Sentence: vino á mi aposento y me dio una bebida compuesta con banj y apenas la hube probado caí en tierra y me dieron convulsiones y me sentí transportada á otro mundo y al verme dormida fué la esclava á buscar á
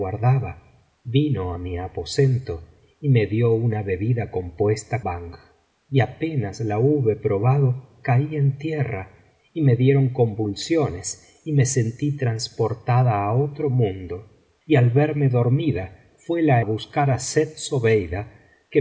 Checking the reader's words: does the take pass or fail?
fail